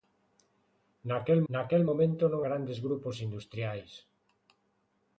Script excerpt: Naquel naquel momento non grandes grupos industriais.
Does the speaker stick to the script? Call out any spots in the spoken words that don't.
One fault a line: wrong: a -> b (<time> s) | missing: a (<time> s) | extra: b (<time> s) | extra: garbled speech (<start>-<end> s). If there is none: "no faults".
no faults